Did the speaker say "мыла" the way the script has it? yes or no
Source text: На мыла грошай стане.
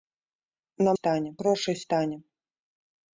no